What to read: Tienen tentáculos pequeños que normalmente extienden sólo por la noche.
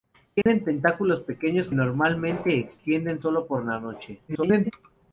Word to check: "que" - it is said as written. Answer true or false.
false